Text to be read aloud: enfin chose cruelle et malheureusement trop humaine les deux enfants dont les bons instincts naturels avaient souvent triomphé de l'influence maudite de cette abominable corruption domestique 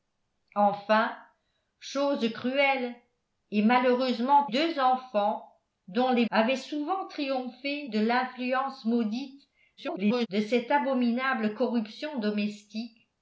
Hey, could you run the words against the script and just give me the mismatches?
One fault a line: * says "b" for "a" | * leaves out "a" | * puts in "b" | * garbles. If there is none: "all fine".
* leaves out "trop humaine les"
* leaves out "bons instincts naturels"
* garbles